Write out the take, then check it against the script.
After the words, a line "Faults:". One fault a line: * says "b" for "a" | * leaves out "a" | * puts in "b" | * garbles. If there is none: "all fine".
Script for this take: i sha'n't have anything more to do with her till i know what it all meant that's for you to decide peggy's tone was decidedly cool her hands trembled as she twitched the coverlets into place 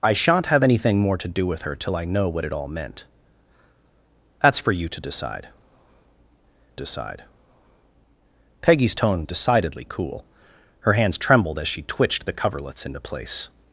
i sha'n't have anything more to do with her till i know what it all meant that's for you to decide decide peggy's tone decidedly cool her hands trembled as she twitched the coverlets into place
Faults:
* puts in "decide"
* leaves out "was"